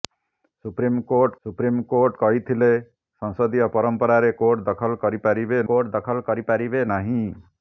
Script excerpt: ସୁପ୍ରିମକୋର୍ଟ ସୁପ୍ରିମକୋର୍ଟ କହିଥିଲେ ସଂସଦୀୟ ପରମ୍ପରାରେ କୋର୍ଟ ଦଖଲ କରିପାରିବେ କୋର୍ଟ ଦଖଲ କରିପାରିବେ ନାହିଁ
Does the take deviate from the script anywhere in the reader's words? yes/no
no